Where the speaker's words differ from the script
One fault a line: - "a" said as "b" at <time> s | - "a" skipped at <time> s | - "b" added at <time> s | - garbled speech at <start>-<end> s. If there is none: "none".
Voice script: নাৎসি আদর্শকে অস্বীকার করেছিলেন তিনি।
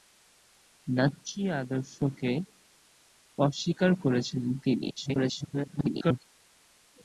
- garbled speech at 5.0-6.2 s